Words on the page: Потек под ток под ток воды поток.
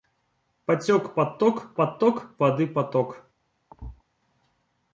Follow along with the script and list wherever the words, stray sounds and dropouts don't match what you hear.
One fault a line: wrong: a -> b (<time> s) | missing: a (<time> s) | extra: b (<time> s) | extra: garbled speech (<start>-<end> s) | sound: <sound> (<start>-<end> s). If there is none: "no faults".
sound: thud (3.7-4.0 s)